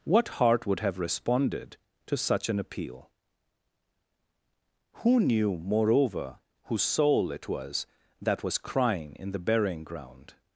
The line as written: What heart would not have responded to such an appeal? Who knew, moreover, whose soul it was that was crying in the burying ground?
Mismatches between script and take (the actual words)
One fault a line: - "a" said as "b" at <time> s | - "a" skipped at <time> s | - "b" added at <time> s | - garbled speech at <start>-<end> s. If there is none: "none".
- "not" skipped at 0.8 s